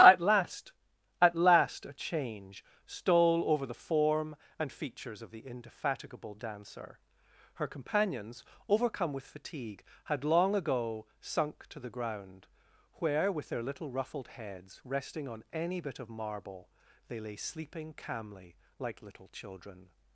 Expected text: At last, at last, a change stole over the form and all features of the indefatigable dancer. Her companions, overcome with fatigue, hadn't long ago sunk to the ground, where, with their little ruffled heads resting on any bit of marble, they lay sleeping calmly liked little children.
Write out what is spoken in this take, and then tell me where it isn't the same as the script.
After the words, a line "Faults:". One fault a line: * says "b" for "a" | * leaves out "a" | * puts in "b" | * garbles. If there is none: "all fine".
At last, at last, a change stole over the form and features of the indefatigable dancer. Her companions, overcome with fatigue, had long ago sunk to the ground, where, with their little ruffled heads resting on any bit of marble, they lay sleeping calmly like little children.
Faults:
* leaves out "all"
* says "had" for "hadn't"
* says "like" for "liked"